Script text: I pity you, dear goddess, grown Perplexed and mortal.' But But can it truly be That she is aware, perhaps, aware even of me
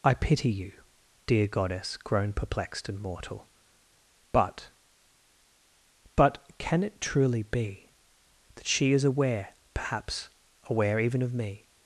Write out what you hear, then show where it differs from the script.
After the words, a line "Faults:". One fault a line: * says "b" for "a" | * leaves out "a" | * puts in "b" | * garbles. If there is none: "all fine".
I pity you, dear goddess, grown Perplexed and mortal.' But But can it truly be That she is aware, perhaps, aware even of me
Faults:
all fine